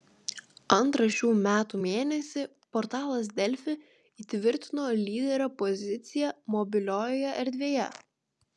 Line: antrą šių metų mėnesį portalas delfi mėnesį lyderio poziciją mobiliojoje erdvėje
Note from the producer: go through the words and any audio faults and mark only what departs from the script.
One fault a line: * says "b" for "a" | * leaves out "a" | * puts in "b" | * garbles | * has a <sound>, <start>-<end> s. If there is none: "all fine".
* says "įtvirtino" for "mėnesį"